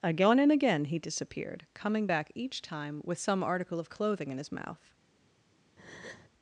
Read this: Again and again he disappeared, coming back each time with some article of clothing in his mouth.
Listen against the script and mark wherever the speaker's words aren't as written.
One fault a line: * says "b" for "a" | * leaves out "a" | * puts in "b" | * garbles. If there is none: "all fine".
all fine